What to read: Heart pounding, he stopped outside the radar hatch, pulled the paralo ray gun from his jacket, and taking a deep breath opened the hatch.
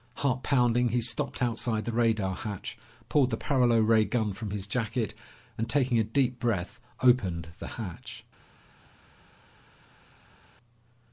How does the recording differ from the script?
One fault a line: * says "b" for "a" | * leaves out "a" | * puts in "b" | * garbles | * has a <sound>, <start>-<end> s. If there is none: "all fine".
all fine